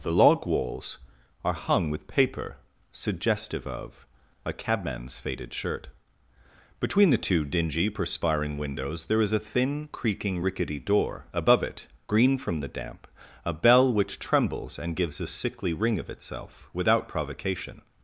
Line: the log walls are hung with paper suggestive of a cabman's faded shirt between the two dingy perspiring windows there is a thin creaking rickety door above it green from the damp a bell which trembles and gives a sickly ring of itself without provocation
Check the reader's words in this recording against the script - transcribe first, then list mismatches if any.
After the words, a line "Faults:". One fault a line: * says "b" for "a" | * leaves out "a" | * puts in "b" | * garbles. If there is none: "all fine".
the log walls are hung with paper suggestive of a cabman's faded shirt between the two dingy perspiring windows there is a thin creaking rickety door above it green from the damp a bell which trembles and gives a sickly ring of itself without provocation
Faults:
all fine